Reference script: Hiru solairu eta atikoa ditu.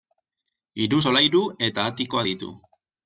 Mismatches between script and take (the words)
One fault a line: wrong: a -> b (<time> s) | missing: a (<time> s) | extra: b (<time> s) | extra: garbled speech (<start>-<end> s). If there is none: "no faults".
no faults